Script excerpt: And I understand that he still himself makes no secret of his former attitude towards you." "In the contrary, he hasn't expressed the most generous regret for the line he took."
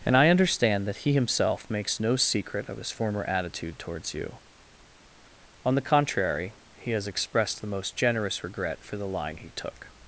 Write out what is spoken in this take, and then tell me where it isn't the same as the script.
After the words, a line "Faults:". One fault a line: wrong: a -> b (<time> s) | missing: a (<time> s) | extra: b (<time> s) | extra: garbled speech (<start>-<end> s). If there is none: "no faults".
And I understand that he himself makes no secret of his former attitude towards you." "On the contrary, he has expressed the most generous regret for the line he took."
Faults:
missing: still (1.1 s)
wrong: In -> On (5.6 s)
wrong: hasn't -> has (6.9 s)